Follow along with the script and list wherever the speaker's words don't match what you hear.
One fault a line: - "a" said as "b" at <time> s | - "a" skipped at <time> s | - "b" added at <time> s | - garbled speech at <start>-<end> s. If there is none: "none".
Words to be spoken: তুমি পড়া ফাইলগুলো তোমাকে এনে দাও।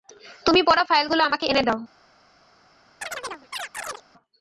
- "তোমাকে" said as "আমাকে" at 1.2 s